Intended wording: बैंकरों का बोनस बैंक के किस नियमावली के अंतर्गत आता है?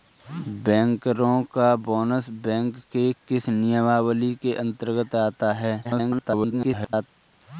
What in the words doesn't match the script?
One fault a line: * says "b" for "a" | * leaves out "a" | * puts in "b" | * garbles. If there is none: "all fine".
* garbles